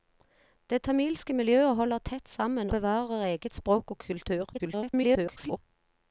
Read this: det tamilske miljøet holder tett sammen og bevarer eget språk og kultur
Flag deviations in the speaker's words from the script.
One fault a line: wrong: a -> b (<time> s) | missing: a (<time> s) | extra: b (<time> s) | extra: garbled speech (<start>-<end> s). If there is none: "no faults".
missing: og (2.7 s)
extra: garbled speech (4.5-5.6 s)